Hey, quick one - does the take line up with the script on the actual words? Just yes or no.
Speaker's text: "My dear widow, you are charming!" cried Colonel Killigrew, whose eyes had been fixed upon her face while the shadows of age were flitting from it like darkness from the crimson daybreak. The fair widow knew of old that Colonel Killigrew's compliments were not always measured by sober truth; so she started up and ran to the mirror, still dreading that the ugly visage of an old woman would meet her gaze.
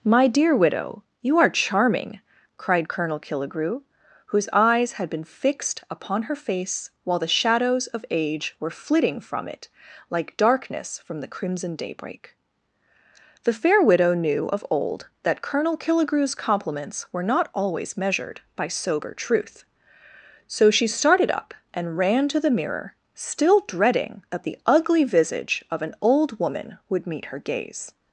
yes